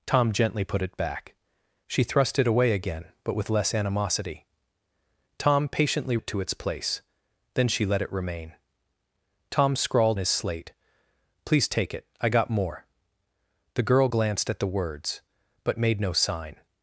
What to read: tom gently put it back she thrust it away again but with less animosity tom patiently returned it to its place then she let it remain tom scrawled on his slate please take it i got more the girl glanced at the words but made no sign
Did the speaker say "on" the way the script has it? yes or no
no